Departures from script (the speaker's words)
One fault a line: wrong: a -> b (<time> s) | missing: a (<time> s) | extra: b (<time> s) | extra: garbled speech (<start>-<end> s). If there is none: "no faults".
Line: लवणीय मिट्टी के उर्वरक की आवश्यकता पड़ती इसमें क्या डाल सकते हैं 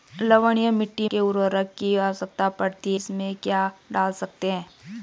no faults